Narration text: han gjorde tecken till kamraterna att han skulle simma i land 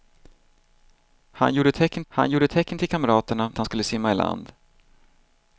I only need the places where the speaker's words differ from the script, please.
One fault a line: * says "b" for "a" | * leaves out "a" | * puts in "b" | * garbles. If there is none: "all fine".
* puts in "han gjorde tecken"
* leaves out "att"